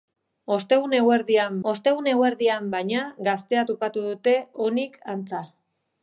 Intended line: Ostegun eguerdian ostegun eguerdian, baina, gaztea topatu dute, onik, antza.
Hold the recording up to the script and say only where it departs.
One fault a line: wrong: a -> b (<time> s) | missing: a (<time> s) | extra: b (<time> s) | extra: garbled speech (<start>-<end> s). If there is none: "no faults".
no faults